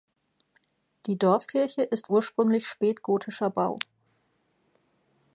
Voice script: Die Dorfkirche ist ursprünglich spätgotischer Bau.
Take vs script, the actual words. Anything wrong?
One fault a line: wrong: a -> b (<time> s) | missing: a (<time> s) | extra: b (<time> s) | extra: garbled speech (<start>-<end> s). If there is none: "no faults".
no faults